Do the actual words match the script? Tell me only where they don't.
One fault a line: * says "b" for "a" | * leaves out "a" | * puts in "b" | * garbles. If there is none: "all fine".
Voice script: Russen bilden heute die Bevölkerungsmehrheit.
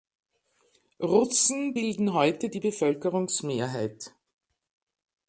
all fine